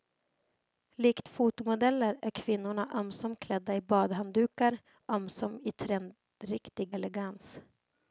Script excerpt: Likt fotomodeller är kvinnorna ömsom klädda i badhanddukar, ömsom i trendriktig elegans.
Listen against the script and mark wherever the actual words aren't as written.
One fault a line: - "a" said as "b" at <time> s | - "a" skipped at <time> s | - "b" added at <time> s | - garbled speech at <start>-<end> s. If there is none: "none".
none